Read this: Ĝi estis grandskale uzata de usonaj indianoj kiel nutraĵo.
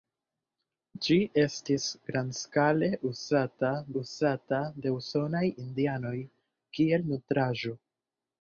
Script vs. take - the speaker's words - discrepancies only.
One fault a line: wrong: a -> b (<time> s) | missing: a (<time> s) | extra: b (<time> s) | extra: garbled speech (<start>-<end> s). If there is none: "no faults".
extra: uzata (4.0 s)